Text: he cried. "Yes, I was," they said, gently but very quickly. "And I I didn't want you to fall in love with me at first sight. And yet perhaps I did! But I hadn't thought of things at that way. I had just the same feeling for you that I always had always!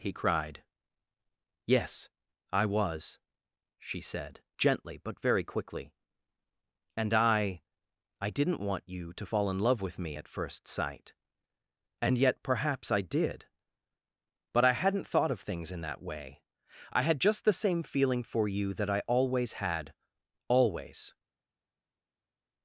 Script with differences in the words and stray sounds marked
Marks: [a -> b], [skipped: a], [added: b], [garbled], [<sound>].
he cried. "Yes, I was," [they -> she] said, gently but very quickly. "And I I didn't want you to fall in love with me at first sight. And yet perhaps I did! But I hadn't thought of things [at -> in] that way. I had just the same feeling for you that I always had always!